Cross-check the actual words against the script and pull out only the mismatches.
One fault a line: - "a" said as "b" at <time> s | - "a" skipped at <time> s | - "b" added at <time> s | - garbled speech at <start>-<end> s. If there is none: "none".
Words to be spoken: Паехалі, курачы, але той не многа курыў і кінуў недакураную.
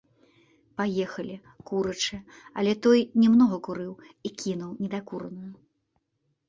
none